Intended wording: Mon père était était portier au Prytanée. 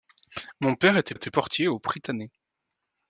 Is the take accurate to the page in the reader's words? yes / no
yes